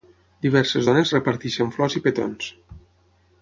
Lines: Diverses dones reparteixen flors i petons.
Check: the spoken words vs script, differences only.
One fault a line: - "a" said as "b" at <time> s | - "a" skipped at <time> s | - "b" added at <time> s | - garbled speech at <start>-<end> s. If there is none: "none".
none